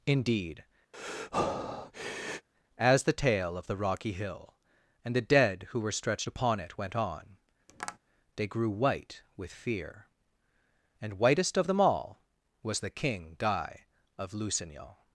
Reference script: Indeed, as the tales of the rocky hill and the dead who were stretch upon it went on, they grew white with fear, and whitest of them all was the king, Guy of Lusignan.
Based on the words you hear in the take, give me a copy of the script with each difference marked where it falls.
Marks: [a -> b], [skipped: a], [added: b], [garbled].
Indeed, as the [tales -> tale] of the rocky hill and the dead who were [stretch -> stretched] upon it went on, they grew white with fear, and whitest of them all was the king, Guy of Lusignan.